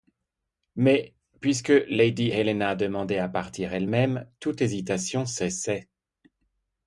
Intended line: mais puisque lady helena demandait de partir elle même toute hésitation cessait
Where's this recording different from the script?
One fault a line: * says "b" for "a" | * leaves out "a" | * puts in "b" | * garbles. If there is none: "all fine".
* says "à" for "de"